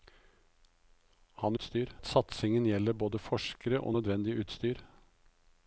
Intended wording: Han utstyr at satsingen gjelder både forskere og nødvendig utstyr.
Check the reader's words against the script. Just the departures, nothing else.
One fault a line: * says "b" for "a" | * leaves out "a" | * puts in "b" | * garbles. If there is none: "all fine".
all fine